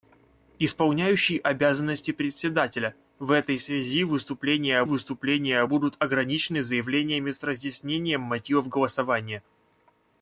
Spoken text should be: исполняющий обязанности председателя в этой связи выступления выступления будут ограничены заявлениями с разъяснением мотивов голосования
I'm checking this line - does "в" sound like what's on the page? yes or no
yes